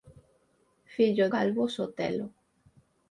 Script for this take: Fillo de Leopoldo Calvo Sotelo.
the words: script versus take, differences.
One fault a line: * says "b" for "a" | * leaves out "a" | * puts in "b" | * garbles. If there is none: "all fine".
* leaves out "de Leopoldo"